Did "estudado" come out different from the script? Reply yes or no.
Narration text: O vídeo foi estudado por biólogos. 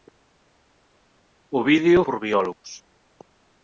yes